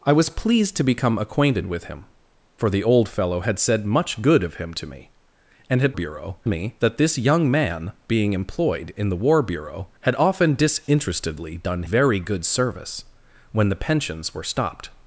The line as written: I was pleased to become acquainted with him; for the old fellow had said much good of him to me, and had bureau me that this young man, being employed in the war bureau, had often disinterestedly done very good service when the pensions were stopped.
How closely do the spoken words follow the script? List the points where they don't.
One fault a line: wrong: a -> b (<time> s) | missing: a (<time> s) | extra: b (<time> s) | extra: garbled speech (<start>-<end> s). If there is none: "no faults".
no faults